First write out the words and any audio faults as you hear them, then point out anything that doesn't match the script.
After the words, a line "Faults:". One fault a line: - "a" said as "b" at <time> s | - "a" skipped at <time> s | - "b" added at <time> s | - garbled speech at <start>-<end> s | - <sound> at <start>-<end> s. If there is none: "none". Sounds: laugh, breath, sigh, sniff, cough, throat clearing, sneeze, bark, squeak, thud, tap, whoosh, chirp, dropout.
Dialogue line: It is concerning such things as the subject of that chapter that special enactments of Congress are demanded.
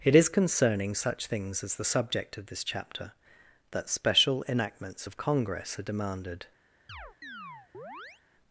It is concerning such things as the subject of this chapter that special enactments of Congress are demanded.
Faults:
- "that" said as "this" at 2.5 s
- chirp at 6.9-8.2 s